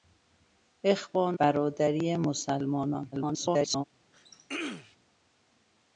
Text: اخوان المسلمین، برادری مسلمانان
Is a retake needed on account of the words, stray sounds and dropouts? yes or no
yes